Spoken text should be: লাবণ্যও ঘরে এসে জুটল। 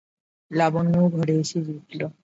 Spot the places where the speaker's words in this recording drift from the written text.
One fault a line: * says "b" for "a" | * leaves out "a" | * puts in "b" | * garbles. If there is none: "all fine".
all fine